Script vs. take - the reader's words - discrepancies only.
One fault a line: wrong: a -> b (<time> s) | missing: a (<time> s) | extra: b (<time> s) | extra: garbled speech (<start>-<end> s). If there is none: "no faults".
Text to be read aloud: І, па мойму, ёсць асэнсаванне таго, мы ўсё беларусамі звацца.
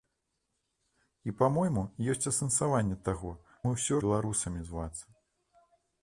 no faults